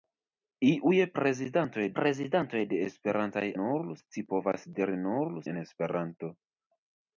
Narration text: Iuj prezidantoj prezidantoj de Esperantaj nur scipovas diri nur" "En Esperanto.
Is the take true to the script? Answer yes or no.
yes